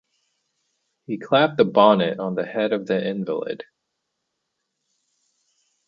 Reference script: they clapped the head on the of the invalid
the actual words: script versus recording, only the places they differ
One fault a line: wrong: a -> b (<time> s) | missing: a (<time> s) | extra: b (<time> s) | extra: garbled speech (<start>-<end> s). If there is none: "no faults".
wrong: they -> he (1.1 s)
wrong: head -> bonnet (1.7 s)
extra: head (2.4 s)